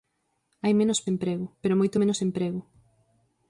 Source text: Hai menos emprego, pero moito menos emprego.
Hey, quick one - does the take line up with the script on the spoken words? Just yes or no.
yes